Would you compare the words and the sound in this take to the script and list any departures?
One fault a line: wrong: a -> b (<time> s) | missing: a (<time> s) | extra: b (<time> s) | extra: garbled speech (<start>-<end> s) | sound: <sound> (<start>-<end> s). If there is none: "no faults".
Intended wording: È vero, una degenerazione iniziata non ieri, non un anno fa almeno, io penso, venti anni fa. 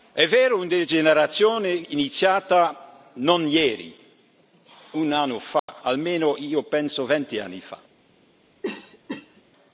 missing: non (4.0 s)
sound: dropout (5.6-5.7 s)
sound: cough (8.6-9.4 s)